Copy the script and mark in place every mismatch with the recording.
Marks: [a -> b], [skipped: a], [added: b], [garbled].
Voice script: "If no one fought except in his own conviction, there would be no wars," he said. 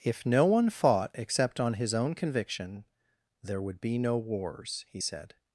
"If no one fought except [in -> on] his own conviction, there would be no wars," he said.